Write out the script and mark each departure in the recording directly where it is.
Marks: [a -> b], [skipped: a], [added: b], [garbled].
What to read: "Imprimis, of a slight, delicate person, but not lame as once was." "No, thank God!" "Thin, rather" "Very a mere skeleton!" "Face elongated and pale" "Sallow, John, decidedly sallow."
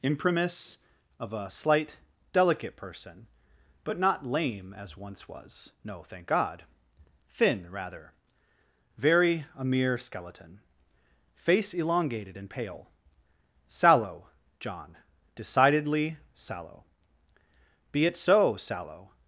"Imprimis, of a slight, delicate person, but not lame as once was." "No, thank God!" "Thin, rather" "Very a mere skeleton!" "Face elongated and pale" "Sallow, John, decidedly sallow." [added: Be it so sallow]